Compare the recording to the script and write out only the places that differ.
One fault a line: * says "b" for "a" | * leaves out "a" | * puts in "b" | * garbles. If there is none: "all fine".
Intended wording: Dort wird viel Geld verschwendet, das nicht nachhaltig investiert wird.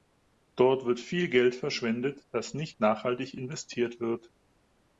all fine